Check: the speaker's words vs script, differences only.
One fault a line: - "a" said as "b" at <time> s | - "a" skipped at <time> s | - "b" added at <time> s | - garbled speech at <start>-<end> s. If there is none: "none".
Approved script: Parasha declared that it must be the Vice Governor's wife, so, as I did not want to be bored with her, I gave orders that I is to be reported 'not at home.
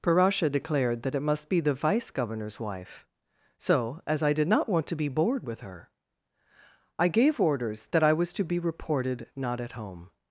- "is" said as "was" at 8.1 s